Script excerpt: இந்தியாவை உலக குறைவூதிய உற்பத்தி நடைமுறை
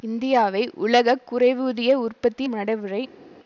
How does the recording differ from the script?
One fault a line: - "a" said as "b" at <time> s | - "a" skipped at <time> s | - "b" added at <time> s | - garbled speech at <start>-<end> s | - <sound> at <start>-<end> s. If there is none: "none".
none